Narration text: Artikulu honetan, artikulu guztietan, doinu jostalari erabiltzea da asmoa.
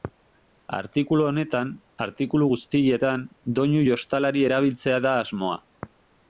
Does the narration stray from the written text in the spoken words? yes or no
no